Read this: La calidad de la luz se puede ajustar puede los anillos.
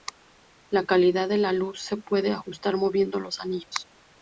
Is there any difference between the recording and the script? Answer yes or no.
yes